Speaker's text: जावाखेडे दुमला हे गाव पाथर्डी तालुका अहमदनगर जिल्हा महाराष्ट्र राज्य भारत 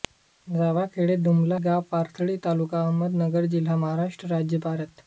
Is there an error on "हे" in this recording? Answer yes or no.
yes